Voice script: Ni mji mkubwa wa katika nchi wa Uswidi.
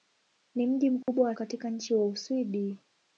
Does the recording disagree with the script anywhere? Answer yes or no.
no